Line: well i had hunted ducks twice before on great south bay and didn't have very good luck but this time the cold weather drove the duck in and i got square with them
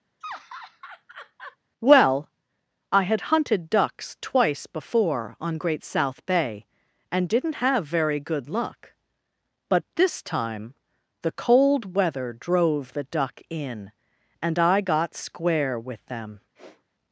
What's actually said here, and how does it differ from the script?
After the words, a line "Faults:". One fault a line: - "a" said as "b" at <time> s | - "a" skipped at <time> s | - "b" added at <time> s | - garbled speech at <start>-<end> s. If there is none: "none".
well i had hunted ducks twice before on great south bay and didn't have very good luck but this time the cold weather drove the duck in and i got square with them
Faults:
none